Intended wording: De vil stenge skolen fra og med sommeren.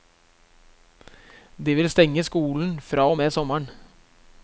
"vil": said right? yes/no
yes